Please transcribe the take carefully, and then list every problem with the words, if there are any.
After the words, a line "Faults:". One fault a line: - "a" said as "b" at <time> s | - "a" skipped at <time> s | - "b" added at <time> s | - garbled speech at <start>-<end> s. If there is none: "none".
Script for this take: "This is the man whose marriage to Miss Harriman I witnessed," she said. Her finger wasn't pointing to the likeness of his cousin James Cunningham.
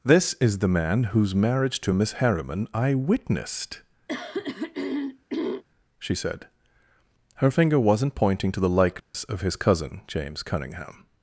"This is the man whose marriage to Miss Harriman I witnessed," she said. Her finger wasn't pointing to the likeness of his cousin James Cunningham.
Faults:
none